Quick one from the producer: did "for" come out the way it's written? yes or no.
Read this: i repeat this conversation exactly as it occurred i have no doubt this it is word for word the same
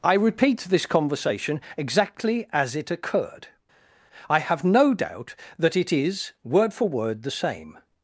yes